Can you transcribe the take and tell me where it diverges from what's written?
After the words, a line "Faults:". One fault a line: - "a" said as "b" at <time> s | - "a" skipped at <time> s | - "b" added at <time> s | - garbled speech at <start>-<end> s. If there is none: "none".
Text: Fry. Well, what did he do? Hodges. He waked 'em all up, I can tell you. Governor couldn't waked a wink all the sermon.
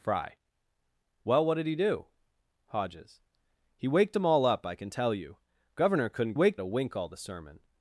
Fry. Well, what did he do? Hodges. He waked 'em all up, I can tell you. Governor couldn't waked a wink all the sermon.
Faults:
none